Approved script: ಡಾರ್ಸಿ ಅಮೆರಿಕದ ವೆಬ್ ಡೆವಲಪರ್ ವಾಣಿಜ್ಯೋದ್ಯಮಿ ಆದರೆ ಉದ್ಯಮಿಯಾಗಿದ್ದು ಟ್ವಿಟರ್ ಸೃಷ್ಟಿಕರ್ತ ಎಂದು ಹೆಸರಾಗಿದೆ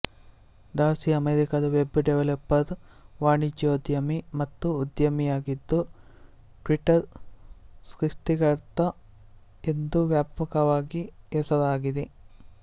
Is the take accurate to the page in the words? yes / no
no